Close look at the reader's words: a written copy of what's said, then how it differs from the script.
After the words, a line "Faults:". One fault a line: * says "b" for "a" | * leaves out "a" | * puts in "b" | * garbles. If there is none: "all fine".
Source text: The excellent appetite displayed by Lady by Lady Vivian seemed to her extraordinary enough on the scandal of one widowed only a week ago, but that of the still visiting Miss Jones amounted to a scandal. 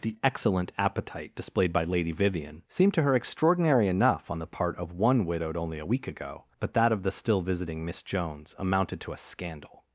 The excellent appetite displayed by Lady Vivian seemed to her extraordinary enough on the part of one widowed only a week ago, but that of the still visiting Miss Jones amounted to a scandal.
Faults:
* leaves out "by Lady"
* says "part" for "scandal"